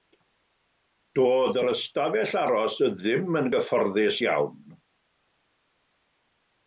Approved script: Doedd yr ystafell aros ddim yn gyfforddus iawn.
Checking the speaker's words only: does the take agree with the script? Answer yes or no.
yes